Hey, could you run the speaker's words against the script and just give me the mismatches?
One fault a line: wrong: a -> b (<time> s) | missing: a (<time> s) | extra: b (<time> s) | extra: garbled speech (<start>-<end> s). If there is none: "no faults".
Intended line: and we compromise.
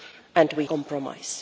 no faults